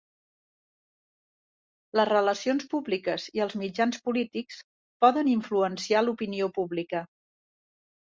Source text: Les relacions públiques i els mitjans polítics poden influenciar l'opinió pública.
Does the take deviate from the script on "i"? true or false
false